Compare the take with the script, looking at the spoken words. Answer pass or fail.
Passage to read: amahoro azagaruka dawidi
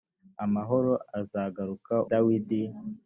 pass